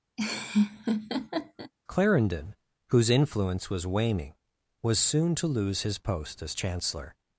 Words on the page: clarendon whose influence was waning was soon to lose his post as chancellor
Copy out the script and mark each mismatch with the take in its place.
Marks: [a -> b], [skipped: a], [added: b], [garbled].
clarendon whose influence was waning was soon to lose his post as chancellor